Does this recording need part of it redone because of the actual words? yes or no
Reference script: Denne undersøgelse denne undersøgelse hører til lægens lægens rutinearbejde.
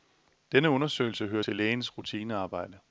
yes